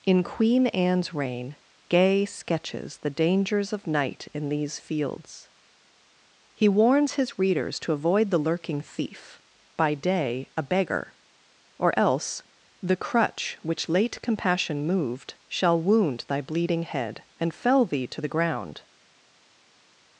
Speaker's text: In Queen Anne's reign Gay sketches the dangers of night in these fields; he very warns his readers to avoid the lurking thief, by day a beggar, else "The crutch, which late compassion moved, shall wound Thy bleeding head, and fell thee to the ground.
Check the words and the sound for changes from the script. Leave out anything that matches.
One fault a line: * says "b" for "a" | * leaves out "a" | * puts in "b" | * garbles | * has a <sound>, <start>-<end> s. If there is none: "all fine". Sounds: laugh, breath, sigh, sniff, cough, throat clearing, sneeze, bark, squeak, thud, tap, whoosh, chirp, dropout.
* leaves out "very"
* puts in "or"